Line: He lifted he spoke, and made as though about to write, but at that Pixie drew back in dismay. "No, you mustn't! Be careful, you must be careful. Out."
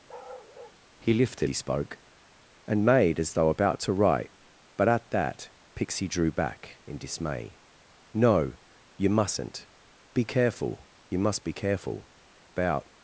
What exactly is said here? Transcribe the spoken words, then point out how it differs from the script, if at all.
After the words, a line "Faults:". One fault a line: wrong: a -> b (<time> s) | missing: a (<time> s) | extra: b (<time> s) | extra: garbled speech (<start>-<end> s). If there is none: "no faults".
He lifted he spoke, and made as though about to write, but at that Pixie drew back in dismay. "No, you mustn't! Be careful, you must be careful. Out."
Faults:
no faults